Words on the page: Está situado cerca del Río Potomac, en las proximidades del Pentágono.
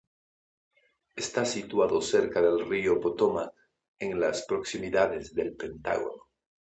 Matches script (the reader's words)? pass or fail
pass